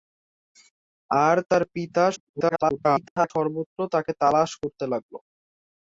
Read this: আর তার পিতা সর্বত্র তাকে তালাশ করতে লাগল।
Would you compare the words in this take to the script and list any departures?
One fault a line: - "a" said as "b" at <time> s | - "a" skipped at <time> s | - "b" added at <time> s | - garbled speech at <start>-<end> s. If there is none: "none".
- garbled speech at 2.2-3.3 s